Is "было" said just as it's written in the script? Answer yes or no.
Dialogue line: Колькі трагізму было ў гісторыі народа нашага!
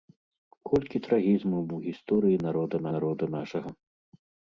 no